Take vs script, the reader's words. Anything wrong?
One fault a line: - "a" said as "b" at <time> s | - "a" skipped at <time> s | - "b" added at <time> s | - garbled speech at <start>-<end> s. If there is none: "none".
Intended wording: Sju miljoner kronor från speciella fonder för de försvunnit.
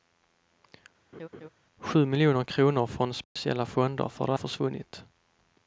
none